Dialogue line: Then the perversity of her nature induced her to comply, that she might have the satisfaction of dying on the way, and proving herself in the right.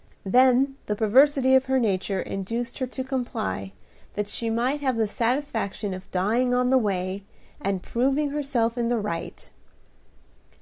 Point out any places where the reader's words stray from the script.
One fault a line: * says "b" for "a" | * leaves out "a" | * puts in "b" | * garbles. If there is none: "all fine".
all fine